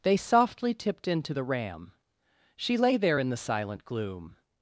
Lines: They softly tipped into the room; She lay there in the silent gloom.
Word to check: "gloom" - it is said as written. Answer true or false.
true